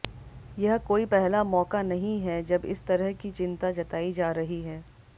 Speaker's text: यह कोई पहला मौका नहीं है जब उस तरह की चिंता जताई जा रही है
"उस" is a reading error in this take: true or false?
true